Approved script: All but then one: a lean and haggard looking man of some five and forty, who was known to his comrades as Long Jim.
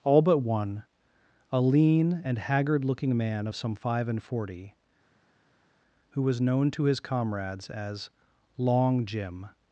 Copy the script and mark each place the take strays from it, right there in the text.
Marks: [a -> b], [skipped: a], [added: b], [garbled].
All but [skipped: then] one: a lean and haggard looking man of some five and forty, who was known to his comrades as Long Jim.